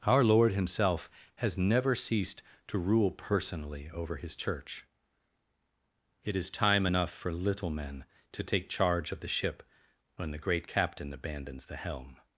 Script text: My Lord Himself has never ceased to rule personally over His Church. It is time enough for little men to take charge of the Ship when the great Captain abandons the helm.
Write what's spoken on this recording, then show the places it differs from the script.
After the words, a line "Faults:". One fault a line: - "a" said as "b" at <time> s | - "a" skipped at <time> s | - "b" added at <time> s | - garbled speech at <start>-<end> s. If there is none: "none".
Our Lord Himself has never ceased to rule personally over His Church. It is time enough for little men to take charge of the Ship when the great Captain abandons the helm.
Faults:
- "My" said as "Our" at 0.0 s